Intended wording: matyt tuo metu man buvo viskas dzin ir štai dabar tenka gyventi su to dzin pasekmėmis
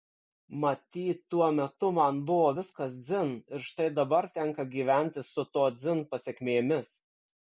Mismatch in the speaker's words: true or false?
false